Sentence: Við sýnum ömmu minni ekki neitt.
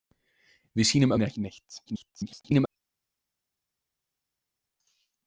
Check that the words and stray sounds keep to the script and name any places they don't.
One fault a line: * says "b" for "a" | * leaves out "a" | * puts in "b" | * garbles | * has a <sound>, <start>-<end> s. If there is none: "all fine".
* leaves out "ömmu"
* garbles